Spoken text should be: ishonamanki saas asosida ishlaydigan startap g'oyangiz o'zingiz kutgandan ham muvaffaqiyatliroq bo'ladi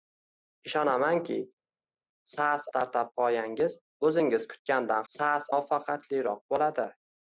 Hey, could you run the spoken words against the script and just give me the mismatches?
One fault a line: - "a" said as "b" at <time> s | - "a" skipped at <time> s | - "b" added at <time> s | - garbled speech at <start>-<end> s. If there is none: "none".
- "asosida ishlaydigan" skipped at 2.7 s
- "ham" said as "saas" at 5.1 s